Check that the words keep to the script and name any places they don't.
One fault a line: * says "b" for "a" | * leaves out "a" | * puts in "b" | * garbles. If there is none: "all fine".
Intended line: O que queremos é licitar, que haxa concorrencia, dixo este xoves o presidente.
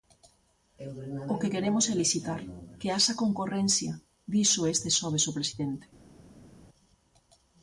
all fine